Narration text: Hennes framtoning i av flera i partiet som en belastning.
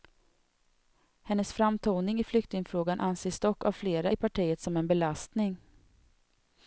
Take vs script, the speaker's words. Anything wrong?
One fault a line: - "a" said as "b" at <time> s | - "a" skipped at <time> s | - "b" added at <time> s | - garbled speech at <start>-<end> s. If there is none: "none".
- "flyktingfrågan anses dock" added at 2.2 s